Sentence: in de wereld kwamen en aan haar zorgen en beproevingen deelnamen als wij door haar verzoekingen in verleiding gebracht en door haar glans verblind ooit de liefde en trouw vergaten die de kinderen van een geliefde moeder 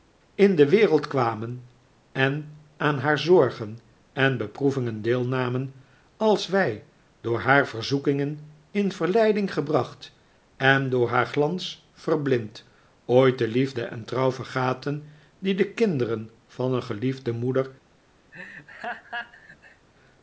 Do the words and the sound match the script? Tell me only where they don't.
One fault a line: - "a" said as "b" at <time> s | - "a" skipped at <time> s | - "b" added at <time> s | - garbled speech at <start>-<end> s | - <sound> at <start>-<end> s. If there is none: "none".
- laugh at 18.3-19.9 s